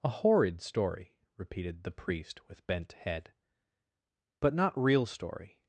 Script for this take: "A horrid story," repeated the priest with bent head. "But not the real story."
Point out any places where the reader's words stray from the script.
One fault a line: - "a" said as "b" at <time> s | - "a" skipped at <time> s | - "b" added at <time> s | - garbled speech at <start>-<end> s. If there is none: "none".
- "the" skipped at 4.8 s